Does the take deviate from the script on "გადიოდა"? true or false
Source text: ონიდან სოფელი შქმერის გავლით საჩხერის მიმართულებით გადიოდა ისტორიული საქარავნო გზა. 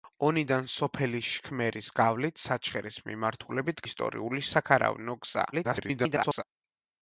true